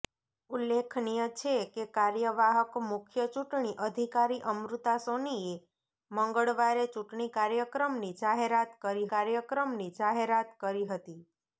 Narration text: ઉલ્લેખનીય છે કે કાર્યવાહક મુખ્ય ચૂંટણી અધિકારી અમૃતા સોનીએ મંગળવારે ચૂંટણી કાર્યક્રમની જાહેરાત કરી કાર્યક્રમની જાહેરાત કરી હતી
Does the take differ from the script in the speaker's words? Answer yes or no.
no